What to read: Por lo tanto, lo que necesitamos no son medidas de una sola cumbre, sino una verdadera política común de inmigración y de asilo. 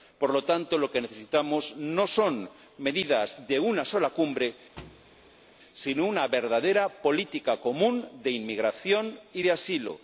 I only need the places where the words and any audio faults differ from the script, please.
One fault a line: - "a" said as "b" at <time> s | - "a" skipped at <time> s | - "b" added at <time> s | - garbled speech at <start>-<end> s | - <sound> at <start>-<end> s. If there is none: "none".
- thud at 4.8-5.5 s